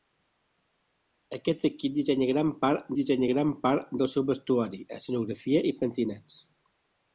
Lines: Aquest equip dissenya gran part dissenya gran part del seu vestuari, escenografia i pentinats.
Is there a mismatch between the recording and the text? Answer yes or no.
no